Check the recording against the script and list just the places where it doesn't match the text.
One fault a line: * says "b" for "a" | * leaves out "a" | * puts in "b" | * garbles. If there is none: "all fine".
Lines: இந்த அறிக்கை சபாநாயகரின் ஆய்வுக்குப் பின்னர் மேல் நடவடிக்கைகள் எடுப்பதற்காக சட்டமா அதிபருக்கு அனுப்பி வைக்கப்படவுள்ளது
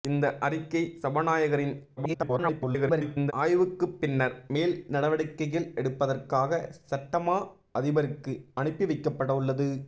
* garbles